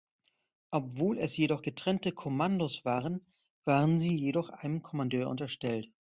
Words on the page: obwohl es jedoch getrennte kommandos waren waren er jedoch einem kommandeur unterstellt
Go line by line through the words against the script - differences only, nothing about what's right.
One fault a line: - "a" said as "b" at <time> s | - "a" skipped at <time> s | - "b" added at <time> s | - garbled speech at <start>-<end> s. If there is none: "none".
- "er" said as "sie" at 4.0 s